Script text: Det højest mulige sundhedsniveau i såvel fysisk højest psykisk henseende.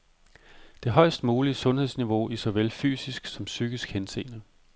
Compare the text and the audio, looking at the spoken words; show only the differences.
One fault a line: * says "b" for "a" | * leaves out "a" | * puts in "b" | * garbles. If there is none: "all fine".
* says "som" for "højest"